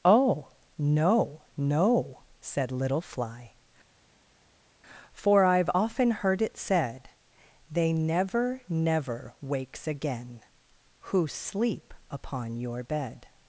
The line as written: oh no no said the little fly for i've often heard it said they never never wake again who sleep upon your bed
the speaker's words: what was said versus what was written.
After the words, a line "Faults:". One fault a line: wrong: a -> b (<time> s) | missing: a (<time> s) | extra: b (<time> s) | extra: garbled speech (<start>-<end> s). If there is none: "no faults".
oh no no said little fly for i've often heard it said they never never wakes again who sleep upon your bed
Faults:
missing: the (2.7 s)
wrong: wake -> wakes (9.4 s)